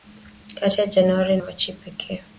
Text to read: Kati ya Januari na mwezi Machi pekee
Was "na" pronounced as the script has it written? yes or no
no